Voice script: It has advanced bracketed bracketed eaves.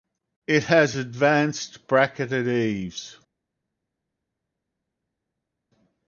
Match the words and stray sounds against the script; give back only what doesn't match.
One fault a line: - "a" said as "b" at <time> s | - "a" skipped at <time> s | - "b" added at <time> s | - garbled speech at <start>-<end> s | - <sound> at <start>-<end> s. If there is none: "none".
- "bracketed" skipped at 2.5 s